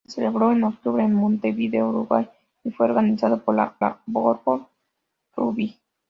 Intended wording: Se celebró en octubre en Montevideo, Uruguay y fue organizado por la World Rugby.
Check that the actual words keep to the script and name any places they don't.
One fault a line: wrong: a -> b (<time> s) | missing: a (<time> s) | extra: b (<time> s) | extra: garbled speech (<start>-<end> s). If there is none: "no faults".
extra: la (3.8 s)